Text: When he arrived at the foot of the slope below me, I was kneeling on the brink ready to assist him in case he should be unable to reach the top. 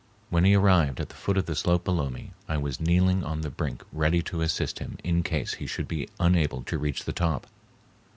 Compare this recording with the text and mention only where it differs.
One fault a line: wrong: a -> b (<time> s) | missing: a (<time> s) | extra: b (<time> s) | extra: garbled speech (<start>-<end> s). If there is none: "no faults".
no faults